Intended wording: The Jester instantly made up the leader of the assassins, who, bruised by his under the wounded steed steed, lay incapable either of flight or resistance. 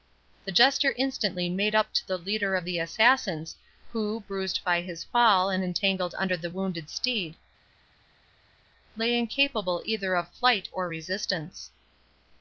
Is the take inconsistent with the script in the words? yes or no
yes